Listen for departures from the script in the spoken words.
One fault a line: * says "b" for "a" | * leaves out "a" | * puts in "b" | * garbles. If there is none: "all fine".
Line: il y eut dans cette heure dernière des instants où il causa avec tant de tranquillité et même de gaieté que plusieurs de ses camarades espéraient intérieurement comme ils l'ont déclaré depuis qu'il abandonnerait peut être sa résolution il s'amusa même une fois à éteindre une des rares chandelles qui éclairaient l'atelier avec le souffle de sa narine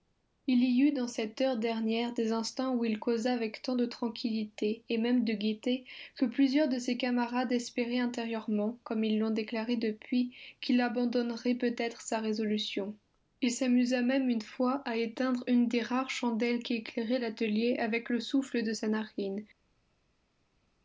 all fine